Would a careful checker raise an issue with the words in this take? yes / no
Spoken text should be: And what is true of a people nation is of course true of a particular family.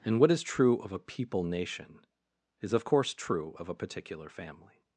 no